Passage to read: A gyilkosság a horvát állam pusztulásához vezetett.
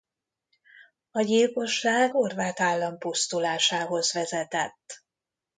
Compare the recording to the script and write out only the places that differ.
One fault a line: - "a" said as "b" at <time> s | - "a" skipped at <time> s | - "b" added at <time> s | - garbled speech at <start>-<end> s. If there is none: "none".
- "a" skipped at 2.1 s